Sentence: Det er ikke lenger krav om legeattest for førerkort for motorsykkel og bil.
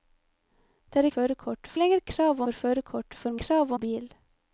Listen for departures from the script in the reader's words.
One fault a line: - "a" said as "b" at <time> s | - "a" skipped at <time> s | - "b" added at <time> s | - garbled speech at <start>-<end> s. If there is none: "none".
- "ikke" said as "førerkort" at 1.1 s
- "om legeattest" skipped at 2.4 s
- "motorsykkel" said as "krav" at 3.4 s